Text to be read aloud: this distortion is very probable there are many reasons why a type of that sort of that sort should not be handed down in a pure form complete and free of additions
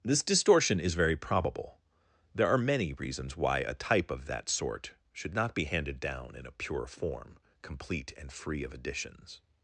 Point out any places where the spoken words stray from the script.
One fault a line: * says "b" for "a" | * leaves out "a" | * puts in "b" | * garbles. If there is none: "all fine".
* leaves out "of that sort"